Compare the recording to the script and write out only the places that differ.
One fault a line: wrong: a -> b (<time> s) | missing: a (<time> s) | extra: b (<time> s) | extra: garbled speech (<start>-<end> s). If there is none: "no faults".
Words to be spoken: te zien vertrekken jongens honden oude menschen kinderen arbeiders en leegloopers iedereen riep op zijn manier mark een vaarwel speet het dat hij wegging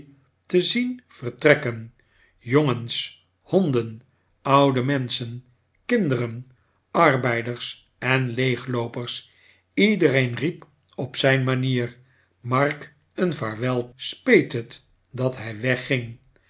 no faults